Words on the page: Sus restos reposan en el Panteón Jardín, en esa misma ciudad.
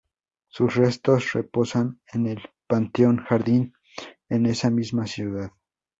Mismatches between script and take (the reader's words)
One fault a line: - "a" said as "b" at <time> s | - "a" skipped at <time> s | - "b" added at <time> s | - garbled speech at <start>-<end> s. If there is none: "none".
none